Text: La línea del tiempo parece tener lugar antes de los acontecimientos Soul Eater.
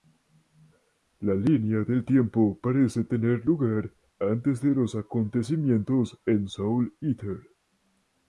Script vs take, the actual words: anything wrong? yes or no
yes